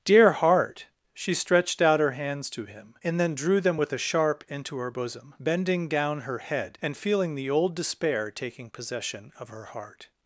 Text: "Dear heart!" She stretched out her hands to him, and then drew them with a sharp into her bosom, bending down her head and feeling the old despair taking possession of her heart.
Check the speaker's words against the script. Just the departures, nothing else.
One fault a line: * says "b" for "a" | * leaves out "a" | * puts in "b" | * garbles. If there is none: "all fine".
all fine